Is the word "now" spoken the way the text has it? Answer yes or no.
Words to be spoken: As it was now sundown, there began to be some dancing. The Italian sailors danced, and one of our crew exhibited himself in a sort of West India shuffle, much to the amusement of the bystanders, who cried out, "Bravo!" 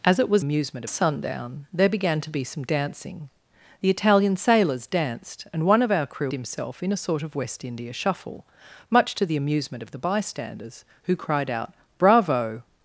no